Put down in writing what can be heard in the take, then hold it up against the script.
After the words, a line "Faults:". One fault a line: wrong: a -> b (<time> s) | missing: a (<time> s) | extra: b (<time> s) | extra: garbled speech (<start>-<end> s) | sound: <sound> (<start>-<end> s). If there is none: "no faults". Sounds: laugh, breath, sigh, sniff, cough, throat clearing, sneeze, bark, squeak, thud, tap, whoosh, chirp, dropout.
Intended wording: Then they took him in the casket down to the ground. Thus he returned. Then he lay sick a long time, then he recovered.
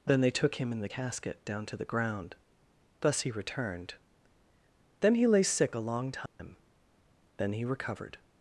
Then they took him in the casket down to the ground. Thus he returned. Then he lay sick a long time, then he recovered.
Faults:
sound: dropout (6.3-6.4 s)